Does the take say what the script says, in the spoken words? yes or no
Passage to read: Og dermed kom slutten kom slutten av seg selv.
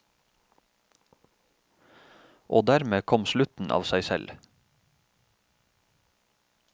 no